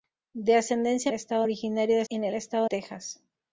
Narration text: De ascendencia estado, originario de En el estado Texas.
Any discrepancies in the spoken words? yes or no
no